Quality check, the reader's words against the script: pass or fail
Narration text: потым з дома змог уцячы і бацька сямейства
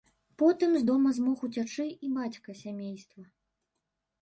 pass